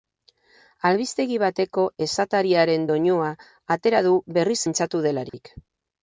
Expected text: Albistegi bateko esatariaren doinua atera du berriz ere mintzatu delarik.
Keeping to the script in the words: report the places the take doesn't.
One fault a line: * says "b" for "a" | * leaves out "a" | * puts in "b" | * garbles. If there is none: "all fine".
* leaves out "ere"